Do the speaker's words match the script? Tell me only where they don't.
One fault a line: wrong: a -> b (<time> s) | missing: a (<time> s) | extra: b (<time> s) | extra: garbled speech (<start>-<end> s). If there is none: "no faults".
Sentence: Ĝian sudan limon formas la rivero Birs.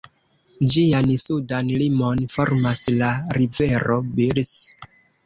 no faults